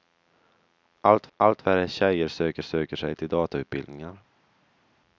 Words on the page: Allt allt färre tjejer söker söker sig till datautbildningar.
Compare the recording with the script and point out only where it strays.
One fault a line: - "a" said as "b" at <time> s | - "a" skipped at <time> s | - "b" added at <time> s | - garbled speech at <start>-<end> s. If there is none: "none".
none